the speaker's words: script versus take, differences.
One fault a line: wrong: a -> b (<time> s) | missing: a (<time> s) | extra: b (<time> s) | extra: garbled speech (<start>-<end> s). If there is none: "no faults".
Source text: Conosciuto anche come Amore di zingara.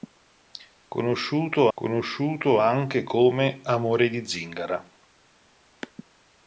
extra: conosciuto (1.7 s)